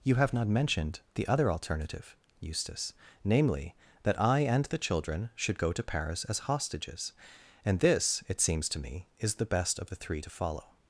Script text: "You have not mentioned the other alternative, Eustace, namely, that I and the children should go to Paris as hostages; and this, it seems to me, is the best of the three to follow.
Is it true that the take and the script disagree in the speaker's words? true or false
false